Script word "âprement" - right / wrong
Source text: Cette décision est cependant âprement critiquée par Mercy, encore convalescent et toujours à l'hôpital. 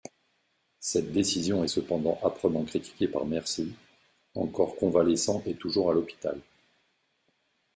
right